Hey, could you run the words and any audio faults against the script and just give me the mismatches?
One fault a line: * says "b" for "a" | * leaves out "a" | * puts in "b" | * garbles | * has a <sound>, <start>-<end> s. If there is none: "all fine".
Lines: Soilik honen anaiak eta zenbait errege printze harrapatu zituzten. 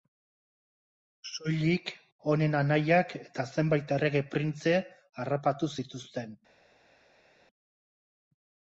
all fine